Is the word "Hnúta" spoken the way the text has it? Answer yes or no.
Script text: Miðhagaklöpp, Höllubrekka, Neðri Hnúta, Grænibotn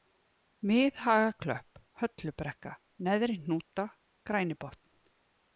yes